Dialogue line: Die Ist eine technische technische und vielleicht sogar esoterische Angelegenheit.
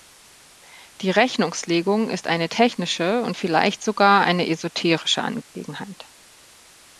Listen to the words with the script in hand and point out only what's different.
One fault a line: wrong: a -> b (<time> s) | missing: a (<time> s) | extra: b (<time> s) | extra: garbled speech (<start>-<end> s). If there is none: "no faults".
extra: Rechnungslegung (1.1 s)
missing: technische (3.2 s)
extra: eine (4.2 s)